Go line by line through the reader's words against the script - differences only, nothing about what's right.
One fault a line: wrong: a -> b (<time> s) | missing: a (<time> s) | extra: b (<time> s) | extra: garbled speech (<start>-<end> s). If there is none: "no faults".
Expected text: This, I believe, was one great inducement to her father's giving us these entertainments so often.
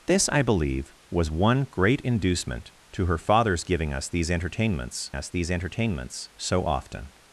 extra: us these entertainments (5.1 s)